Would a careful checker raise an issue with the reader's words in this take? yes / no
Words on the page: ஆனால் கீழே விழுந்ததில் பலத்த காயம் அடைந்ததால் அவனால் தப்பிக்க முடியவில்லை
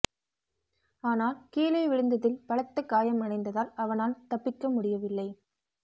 no